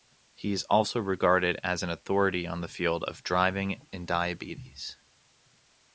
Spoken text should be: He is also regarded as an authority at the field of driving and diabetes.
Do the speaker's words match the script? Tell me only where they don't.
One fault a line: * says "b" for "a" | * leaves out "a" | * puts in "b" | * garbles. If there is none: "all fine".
* says "on" for "at"